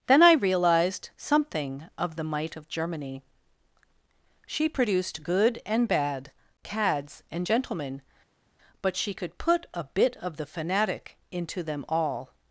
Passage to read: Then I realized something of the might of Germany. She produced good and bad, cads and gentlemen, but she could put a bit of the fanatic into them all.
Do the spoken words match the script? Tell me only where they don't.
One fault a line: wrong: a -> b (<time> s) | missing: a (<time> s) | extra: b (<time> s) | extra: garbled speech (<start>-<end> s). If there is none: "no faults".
no faults